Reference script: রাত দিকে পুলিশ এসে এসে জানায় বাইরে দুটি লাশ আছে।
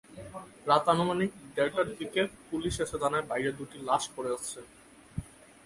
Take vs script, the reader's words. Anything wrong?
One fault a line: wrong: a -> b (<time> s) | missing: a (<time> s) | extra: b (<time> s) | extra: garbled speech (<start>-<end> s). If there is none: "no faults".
extra: আনুমানিক দেড়টার (0.9 s)
missing: এসে (3.0 s)
extra: পড়ে (4.2 s)